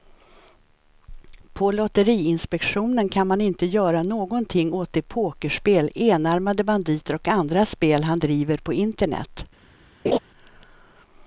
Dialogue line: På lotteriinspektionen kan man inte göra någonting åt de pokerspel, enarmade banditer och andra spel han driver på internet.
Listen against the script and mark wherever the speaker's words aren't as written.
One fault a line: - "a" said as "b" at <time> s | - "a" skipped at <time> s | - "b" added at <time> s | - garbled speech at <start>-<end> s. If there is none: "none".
none